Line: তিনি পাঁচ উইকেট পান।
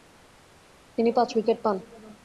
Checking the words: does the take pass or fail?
pass